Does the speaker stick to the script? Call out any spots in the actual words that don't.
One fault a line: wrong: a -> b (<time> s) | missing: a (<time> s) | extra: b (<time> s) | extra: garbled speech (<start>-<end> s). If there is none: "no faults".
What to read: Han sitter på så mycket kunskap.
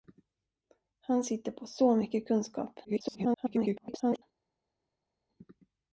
extra: garbled speech (2.8-4.2 s)